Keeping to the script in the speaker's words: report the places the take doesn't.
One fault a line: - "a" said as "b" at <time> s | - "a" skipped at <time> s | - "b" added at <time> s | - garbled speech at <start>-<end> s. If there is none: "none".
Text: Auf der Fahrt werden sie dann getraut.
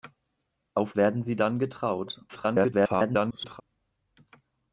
- "der Fahrt" skipped at 0.9 s
- garbled speech at 2.3-3.6 s